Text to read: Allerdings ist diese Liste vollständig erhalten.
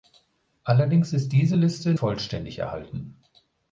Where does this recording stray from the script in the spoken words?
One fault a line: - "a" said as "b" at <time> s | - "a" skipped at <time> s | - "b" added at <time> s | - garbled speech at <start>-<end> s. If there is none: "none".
none